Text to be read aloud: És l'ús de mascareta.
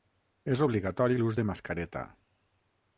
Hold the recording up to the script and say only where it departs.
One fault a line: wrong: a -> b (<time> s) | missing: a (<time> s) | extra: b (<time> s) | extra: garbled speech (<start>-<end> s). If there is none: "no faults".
extra: obligatori (0.6 s)